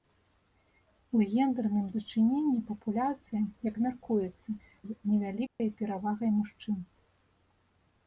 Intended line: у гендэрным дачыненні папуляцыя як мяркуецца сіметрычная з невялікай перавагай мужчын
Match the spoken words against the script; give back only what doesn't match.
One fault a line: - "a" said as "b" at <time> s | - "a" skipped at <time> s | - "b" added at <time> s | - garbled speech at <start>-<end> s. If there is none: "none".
- "сіметрычная" skipped at 4.5 s